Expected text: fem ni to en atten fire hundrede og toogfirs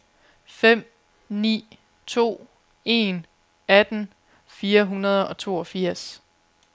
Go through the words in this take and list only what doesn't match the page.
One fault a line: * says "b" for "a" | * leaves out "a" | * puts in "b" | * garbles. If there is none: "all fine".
all fine